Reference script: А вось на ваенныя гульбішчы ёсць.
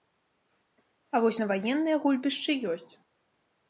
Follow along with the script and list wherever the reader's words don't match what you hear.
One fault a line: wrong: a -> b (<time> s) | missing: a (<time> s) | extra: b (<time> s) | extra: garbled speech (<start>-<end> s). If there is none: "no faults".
no faults